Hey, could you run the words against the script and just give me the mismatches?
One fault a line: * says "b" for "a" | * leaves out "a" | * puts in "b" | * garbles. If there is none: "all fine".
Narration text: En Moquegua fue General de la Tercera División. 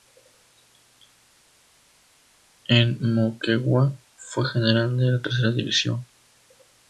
all fine